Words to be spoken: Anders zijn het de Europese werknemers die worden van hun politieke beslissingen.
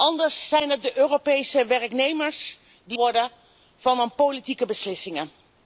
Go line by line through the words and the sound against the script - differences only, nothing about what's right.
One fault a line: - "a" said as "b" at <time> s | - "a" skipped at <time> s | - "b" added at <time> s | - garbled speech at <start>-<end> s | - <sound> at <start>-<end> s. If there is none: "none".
none